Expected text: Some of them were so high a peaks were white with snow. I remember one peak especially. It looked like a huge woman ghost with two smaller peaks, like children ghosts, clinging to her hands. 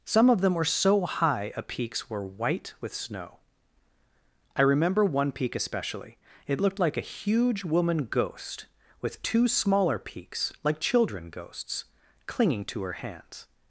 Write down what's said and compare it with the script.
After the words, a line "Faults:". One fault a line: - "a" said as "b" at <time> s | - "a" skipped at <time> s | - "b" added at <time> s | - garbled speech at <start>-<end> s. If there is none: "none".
Some of them were so high a peaks were white with snow. I remember one peak especially. It looked like a huge woman ghost with two smaller peaks, like children ghosts, clinging to her hands.
Faults:
none